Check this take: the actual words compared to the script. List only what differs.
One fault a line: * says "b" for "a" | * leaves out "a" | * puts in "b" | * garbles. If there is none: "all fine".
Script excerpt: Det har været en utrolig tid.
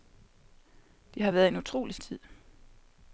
all fine